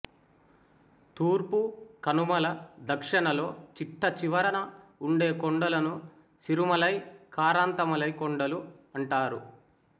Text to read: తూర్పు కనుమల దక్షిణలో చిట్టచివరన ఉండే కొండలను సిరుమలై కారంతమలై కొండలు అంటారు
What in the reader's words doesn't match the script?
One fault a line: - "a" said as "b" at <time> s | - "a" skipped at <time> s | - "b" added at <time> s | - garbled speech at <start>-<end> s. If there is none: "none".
none